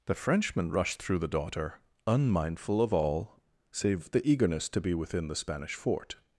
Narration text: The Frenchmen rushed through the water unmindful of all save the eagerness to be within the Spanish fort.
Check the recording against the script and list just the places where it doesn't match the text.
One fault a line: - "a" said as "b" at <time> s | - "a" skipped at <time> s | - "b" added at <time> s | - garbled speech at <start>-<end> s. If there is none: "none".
- "water" said as "daughter" at 1.3 s